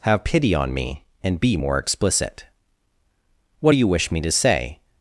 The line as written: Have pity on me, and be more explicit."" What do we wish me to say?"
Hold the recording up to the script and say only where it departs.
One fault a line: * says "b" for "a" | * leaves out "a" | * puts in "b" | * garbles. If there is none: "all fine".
* says "you" for "we"